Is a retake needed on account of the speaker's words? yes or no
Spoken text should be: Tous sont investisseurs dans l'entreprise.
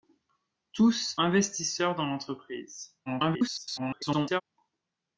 yes